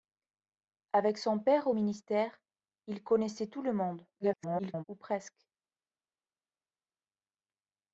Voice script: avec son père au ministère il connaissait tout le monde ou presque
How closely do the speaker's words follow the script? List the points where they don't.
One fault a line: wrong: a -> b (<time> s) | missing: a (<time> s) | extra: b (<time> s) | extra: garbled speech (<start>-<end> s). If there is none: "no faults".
extra: garbled speech (4.2-4.8 s)